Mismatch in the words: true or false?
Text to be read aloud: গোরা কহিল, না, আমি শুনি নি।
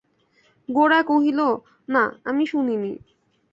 false